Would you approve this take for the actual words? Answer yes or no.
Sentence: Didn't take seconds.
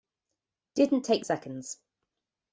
yes